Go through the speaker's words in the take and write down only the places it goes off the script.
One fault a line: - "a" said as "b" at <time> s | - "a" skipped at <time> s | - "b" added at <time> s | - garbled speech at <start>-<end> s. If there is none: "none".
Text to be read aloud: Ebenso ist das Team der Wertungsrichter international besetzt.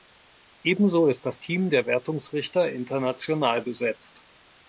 none